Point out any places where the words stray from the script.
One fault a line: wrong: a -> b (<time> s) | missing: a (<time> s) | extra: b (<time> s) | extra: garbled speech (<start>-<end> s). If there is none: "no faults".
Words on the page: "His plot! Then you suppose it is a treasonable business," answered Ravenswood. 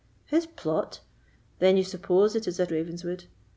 missing: treasonable business answered (2.7 s)